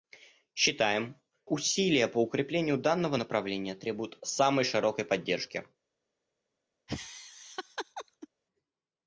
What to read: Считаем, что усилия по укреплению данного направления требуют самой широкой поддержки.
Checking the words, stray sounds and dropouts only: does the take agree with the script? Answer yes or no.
no